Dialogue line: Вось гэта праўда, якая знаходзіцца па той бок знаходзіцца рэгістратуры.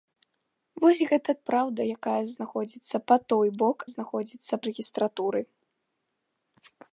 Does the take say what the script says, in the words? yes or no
yes